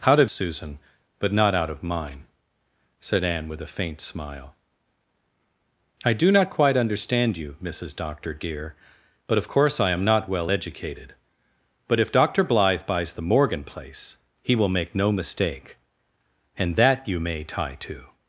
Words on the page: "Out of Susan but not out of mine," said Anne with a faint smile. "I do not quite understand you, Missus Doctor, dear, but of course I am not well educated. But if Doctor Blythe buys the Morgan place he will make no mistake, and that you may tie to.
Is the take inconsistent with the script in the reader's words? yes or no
no